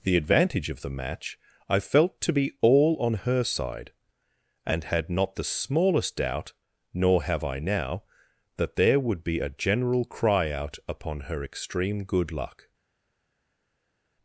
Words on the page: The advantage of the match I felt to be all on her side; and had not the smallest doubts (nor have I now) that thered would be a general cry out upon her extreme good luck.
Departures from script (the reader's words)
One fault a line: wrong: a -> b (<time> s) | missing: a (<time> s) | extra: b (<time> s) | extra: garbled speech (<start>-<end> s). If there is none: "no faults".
wrong: doubts -> doubt (6.1 s)
wrong: thered -> there (8.8 s)